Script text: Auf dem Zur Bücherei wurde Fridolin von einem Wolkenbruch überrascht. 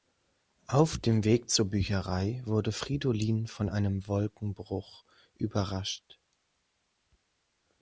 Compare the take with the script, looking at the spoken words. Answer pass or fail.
fail